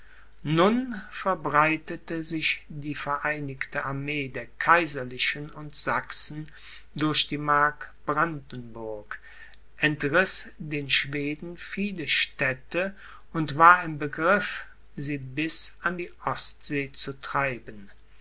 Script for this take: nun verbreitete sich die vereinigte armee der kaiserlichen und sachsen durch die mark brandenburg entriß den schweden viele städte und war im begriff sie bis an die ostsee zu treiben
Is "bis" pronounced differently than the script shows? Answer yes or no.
no